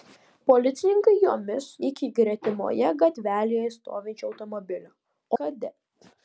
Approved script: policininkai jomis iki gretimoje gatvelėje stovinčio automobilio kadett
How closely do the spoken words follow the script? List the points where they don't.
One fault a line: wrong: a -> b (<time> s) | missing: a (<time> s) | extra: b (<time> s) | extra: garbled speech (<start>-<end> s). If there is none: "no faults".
no faults